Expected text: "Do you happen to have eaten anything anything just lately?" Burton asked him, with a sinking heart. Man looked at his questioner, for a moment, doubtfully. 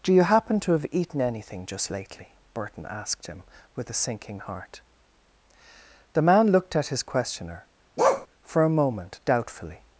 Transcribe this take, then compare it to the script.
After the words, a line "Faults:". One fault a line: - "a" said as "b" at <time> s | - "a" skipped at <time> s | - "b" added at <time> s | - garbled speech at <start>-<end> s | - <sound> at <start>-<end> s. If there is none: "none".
"Do you happen to have eaten anything just lately?" Burton asked him, with a sinking heart. The man looked at his questioner, for a moment, doubtfully.
Faults:
- "anything" skipped at 1.7 s
- "The" added at 6.1 s
- bark at 8.0-8.3 s